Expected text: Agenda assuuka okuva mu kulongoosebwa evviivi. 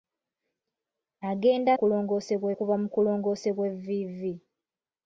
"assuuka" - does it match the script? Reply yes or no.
no